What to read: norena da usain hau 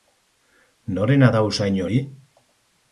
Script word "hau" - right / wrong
wrong